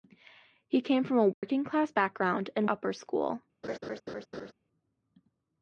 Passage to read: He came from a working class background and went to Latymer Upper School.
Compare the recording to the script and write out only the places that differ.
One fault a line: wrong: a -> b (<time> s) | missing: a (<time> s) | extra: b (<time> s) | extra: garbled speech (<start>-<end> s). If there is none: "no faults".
missing: went to Latymer (2.7 s)